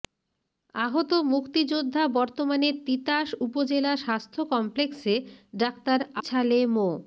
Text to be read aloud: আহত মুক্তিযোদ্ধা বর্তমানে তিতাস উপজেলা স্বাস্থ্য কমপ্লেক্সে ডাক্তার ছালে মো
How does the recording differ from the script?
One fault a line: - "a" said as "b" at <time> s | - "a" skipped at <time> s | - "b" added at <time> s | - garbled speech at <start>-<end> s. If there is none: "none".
none